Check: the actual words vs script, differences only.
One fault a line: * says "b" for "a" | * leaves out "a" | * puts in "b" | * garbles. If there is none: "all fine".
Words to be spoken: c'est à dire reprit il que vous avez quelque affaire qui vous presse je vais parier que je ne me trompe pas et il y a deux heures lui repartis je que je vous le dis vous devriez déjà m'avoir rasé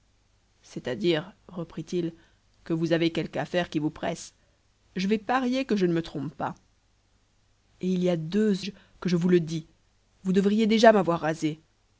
* leaves out "heures lui repartis"